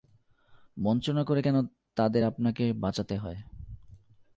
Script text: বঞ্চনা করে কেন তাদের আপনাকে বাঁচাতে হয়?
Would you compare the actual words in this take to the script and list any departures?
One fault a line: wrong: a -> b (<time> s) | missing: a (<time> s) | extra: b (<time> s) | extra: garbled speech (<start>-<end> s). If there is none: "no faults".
no faults